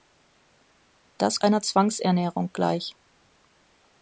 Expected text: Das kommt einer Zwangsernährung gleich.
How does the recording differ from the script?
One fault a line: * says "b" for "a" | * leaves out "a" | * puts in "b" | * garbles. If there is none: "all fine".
* leaves out "kommt"